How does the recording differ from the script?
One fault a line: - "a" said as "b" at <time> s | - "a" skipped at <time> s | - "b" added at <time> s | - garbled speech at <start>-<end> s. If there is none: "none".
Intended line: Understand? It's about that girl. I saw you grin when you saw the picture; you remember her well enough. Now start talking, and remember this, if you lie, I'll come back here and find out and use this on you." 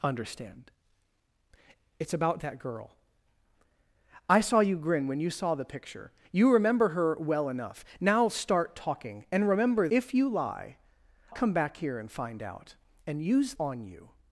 - "this" skipped at 9.9 s
- "I'll" skipped at 10.8 s
- "this" skipped at 13.5 s